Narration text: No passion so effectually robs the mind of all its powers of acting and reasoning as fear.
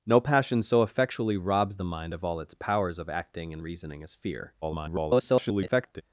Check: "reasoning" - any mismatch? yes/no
no